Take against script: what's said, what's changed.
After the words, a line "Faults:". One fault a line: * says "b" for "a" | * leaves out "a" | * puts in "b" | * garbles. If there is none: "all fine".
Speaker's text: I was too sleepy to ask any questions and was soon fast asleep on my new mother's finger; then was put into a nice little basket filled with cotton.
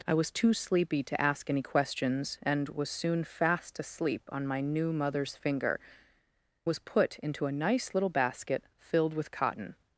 I was too sleepy to ask any questions and was soon fast asleep on my new mother's finger; was put into a nice little basket filled with cotton.
Faults:
* leaves out "then"